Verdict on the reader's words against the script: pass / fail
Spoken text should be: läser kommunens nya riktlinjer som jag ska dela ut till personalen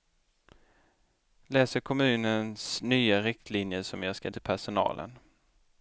fail